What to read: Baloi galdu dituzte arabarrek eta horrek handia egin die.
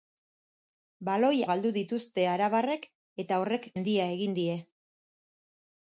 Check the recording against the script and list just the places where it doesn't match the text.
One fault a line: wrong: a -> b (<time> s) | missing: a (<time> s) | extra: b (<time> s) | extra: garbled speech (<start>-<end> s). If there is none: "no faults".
no faults